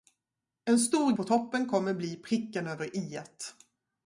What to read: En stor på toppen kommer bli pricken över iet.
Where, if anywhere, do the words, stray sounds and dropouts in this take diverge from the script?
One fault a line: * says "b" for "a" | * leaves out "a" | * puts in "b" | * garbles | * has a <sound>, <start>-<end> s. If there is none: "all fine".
all fine